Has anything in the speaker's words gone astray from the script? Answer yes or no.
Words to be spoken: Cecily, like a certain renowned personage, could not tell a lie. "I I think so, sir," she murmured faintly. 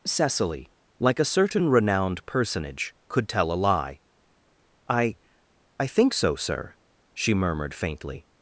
yes